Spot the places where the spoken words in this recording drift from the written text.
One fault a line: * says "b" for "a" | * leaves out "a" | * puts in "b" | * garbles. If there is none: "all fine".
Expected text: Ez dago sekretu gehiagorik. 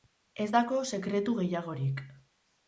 all fine